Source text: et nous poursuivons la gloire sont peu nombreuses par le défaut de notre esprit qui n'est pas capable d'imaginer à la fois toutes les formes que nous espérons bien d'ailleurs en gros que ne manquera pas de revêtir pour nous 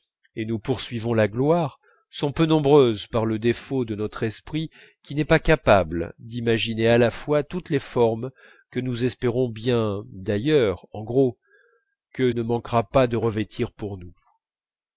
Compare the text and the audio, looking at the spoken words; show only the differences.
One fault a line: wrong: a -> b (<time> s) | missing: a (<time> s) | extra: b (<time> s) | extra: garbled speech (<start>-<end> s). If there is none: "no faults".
no faults